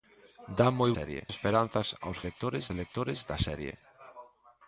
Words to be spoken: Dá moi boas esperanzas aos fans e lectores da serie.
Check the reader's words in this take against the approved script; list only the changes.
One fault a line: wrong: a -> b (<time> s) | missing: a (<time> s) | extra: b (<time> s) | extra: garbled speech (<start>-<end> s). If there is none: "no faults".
wrong: boas -> serie (1.0 s)
wrong: fans -> lectores (2.3 s)